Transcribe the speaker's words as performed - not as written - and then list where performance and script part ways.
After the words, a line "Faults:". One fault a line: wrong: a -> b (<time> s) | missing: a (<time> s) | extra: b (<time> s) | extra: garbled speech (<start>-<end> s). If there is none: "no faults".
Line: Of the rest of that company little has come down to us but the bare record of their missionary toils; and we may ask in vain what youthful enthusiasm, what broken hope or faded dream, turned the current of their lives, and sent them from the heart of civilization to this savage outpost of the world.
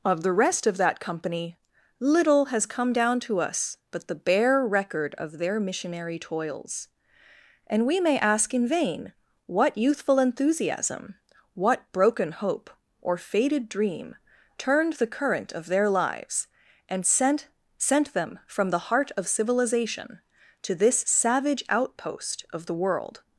Of the rest of that company little has come down to us but the bare record of their missionary toils; and we may ask in vain what youthful enthusiasm, what broken hope or faded dream, turned the current of their lives, and sent sent them from the heart of civilization to this savage outpost of the world.
Faults:
extra: sent (17.8 s)